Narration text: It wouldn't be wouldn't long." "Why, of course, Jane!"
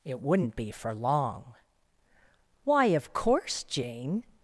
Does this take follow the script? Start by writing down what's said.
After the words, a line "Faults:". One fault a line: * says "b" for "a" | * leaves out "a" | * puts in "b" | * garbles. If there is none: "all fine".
It wouldn't be for long." "Why, of course, Jane!"
Faults:
* says "for" for "wouldn't"